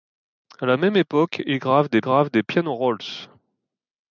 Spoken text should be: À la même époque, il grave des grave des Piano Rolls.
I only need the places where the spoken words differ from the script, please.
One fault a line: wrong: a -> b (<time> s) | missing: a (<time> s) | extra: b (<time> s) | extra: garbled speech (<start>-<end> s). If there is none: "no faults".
no faults